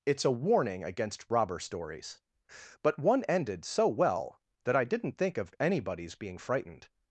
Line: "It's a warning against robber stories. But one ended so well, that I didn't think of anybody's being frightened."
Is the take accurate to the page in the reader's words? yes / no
yes